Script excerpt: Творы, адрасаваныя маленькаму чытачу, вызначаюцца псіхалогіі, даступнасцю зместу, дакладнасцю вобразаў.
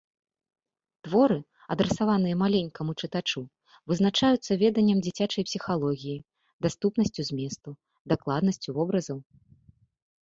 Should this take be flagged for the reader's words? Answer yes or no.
yes